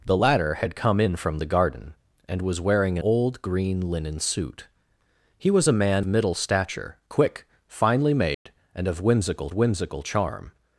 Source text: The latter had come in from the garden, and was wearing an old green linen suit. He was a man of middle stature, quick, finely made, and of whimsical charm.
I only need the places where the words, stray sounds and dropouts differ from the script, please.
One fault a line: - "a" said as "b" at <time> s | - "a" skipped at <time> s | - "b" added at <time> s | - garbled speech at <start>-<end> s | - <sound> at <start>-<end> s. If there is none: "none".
- "an" skipped at 3.0 s
- "of" skipped at 6.1 s
- dropout at 8.3-8.5 s
- "whimsical" added at 9.5 s